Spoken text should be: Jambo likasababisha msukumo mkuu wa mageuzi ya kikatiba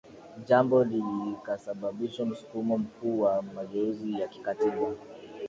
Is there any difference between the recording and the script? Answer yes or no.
no